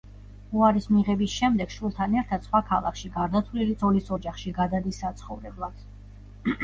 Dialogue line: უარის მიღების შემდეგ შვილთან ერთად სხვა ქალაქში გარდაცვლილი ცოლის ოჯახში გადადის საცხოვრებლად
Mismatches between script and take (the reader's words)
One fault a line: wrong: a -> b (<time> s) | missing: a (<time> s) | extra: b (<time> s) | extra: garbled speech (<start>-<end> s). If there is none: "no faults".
no faults